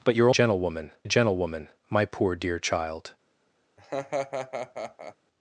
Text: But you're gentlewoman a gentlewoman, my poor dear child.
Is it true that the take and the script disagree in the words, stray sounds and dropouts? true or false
true